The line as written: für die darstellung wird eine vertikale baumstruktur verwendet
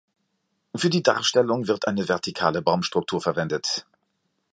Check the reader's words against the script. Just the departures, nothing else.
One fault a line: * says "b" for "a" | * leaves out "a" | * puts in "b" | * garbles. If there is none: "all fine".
all fine